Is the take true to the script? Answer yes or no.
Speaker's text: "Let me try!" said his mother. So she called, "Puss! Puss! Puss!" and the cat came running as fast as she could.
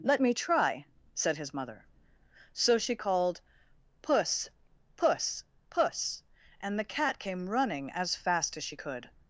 yes